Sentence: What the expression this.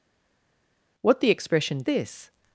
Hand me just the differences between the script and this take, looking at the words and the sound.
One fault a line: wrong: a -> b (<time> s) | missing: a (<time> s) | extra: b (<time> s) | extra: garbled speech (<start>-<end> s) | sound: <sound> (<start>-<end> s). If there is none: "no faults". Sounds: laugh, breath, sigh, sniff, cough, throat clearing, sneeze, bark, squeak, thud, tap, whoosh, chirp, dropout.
no faults